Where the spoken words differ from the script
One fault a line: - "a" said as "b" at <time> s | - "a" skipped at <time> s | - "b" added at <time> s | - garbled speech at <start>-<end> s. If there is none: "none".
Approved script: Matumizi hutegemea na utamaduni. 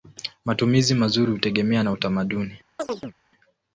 - "mazuri" added at 0.9 s